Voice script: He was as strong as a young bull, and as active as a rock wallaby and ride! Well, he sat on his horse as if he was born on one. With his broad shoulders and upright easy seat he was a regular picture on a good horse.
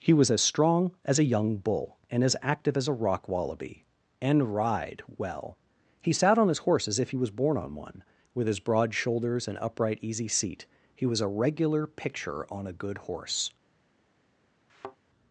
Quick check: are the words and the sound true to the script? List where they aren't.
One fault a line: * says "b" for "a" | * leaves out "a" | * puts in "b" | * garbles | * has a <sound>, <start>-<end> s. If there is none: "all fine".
* has a thud, 14.7-15.0 s